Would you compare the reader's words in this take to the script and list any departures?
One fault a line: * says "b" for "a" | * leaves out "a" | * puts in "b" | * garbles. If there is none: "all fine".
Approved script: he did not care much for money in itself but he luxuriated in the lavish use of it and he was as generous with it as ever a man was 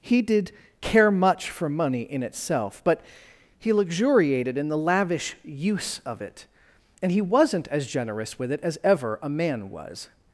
* leaves out "not"
* says "wasn't" for "was"